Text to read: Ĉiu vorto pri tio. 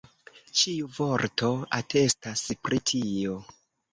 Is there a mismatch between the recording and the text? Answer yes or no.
yes